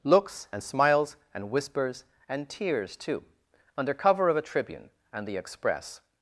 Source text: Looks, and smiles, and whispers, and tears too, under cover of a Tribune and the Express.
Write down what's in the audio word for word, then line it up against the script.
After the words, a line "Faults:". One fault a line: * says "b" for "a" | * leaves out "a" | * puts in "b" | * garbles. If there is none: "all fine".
Looks, and smiles, and whispers, and tears too, under cover of a Tribune and the Express.
Faults:
all fine